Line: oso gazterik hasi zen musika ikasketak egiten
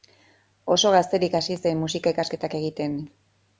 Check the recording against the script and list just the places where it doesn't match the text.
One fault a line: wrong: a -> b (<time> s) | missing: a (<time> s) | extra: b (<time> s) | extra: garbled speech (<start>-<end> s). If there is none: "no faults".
no faults